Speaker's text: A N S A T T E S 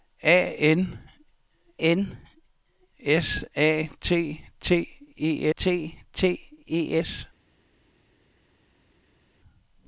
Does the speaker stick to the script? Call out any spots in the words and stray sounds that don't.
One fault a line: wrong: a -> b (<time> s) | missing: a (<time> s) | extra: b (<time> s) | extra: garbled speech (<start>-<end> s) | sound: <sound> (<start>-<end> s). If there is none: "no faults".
extra: N (1.8 s)
extra: T T E (5.5 s)